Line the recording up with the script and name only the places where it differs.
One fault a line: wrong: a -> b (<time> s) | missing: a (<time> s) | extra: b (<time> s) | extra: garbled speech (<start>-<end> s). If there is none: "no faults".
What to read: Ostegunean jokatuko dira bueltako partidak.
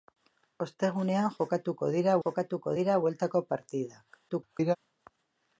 extra: jokatuko dira (2.2 s)
extra: garbled speech (4.3-4.8 s)